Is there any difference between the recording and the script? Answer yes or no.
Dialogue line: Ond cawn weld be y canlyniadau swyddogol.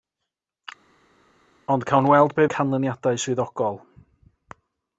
no